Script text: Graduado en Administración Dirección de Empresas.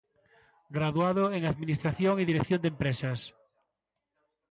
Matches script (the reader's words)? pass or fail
fail